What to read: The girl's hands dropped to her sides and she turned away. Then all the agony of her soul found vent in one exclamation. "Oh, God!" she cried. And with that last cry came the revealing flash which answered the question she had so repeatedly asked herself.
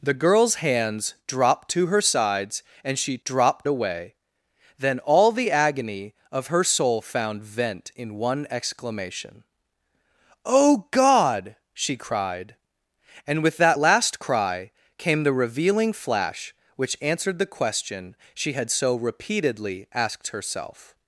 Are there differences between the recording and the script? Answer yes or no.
yes